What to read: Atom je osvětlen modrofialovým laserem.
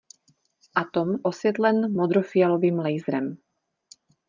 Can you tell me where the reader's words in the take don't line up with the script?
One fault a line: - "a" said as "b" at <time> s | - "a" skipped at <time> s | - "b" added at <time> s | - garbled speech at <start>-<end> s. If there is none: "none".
- "je" skipped at 1.1 s